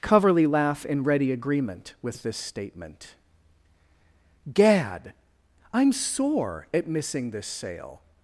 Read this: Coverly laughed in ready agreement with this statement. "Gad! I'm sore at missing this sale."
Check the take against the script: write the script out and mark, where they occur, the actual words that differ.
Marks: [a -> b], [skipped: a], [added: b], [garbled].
Coverly [laughed -> laugh] in ready agreement with this statement. "Gad! I'm sore at missing this sale."